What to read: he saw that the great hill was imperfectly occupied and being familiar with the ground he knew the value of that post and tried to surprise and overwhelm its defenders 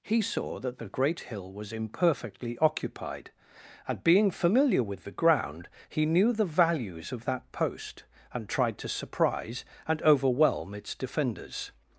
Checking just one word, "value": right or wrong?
wrong